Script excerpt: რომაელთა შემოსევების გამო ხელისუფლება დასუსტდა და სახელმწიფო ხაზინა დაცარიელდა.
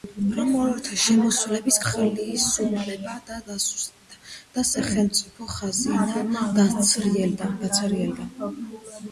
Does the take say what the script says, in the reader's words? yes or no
no